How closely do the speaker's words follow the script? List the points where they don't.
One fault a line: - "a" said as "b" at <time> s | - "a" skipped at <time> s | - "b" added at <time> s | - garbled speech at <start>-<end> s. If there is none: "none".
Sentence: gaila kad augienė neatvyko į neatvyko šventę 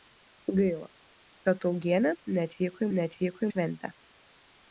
none